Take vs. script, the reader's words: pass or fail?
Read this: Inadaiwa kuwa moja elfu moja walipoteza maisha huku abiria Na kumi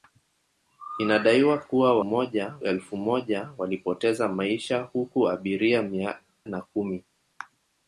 pass